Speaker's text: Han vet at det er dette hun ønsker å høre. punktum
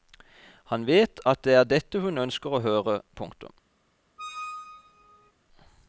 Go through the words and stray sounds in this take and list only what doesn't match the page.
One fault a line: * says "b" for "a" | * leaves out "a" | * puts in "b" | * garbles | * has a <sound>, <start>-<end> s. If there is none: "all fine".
* has a squeak, 4.2-5.3 s